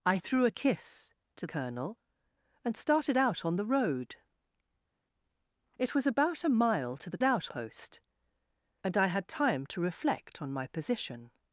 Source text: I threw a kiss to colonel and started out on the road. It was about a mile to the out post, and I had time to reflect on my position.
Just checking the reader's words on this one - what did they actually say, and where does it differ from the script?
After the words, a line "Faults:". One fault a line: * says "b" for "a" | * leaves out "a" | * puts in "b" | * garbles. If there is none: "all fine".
I threw a kiss to colonel and started out on the road. It was about a mile to the out post, and I had time to reflect on my position.
Faults:
all fine